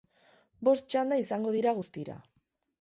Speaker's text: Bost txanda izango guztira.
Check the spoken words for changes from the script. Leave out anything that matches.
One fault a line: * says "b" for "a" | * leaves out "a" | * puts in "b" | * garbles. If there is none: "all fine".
* puts in "dira"